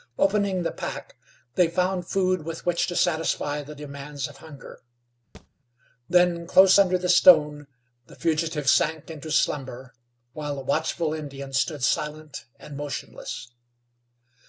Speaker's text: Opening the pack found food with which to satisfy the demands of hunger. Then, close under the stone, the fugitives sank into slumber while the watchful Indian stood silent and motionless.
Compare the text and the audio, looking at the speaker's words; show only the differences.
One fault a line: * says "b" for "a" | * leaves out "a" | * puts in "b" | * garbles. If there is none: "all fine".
* puts in "they"